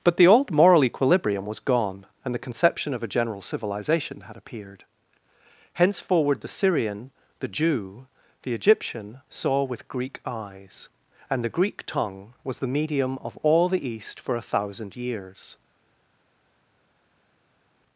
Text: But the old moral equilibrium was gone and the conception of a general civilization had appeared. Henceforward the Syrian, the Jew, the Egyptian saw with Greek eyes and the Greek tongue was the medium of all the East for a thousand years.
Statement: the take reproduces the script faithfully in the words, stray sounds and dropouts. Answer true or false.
true